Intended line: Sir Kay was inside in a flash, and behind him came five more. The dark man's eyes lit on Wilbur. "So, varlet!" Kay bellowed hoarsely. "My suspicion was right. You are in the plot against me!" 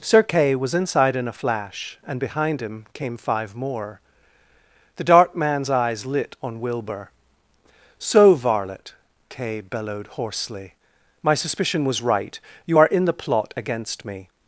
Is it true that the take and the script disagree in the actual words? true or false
false